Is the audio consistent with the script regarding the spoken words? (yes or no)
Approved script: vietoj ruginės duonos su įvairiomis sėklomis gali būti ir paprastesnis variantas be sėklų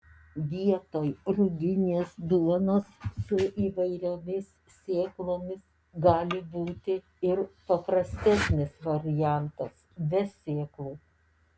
yes